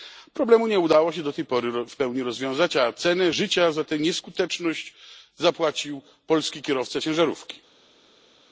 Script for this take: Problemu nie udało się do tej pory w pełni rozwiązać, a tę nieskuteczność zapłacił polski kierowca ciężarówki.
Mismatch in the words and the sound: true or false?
true